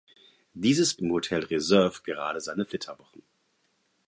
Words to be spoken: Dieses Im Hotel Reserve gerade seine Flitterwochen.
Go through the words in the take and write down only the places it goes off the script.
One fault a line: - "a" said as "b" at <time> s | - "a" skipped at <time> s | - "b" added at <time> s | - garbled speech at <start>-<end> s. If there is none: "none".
none